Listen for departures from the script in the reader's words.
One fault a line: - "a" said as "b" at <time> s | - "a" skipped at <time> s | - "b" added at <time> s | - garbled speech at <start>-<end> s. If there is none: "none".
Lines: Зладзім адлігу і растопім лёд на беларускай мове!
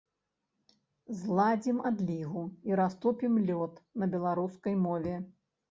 none